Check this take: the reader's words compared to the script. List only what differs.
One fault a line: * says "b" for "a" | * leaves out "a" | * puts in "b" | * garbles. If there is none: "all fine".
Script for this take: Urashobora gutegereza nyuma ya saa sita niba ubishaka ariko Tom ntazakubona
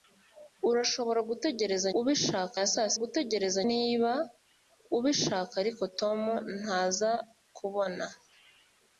* says "ubishaka" for "nyuma"
* says "gutegereza" for "sita"